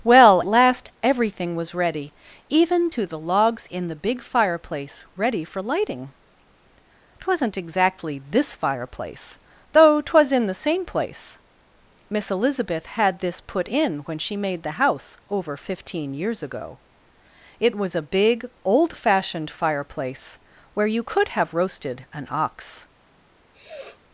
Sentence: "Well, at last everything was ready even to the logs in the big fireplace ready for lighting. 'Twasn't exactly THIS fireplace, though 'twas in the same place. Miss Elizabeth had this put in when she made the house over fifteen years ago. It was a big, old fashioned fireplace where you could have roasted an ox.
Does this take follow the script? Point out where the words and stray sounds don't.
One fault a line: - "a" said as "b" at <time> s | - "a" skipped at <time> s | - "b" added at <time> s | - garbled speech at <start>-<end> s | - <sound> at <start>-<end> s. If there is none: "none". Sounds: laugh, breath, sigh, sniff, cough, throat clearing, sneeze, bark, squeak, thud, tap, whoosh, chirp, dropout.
- "at" skipped at 0.4 s
- sniff at 23.5-24.0 s